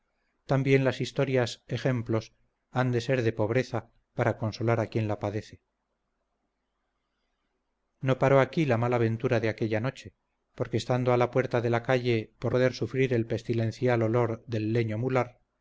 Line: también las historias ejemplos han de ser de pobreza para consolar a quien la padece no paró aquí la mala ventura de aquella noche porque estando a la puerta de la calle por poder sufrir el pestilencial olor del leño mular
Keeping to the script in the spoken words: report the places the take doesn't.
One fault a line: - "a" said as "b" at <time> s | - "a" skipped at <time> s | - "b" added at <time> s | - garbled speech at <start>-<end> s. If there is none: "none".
none